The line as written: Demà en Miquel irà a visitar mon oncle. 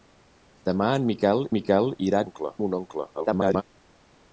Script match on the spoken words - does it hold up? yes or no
no